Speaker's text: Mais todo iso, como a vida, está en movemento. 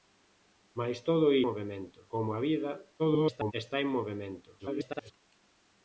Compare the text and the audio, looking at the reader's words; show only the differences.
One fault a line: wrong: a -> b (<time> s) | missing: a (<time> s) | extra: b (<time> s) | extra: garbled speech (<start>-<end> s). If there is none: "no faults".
wrong: iso -> movemento (1.5 s)
extra: garbled speech (3.0-3.5 s)
extra: garbled speech (4.6-5.1 s)